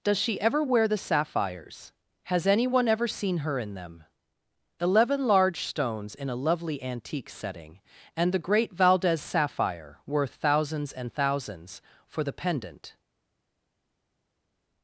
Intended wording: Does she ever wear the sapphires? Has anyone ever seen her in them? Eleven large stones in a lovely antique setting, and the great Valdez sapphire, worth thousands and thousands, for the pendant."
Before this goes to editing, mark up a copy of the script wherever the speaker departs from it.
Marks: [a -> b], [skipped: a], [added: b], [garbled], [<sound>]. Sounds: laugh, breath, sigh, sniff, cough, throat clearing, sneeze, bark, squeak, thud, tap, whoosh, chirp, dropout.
Does she ever wear the sapphires? Has anyone ever seen her in them? Eleven large stones in a lovely antique setting, and the great Valdez sapphire, worth thousands and thousands, for the pendant."